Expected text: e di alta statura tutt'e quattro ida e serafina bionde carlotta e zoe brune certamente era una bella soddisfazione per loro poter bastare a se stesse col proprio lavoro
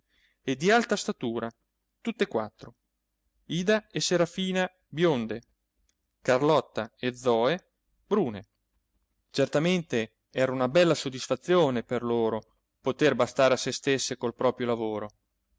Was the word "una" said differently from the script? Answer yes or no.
no